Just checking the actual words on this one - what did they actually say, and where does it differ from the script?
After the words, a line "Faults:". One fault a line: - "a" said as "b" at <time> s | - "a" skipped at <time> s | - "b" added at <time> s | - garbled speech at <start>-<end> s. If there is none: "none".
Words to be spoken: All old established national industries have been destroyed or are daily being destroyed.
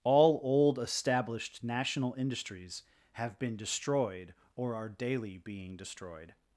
All old established national industries have been destroyed or are daily being destroyed.
Faults:
none